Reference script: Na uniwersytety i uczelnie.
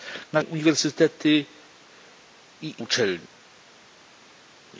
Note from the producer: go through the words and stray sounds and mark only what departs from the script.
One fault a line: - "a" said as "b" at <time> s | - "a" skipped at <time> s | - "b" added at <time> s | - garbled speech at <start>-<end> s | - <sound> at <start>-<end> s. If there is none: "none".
none